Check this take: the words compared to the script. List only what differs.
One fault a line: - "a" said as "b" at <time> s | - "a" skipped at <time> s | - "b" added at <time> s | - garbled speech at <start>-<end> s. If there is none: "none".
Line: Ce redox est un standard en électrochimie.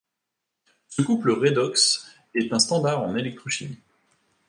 - "couple" added at 1.0 s